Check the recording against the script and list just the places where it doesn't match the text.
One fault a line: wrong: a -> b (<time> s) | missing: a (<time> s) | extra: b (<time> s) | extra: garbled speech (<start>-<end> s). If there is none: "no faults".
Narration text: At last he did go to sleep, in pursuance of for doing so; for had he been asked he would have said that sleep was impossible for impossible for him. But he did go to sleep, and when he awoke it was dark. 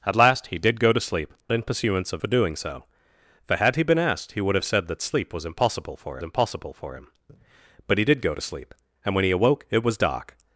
no faults